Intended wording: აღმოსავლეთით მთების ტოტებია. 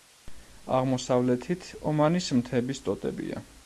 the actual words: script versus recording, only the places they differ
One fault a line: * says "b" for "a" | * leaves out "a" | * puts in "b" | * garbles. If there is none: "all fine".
* puts in "ომანის"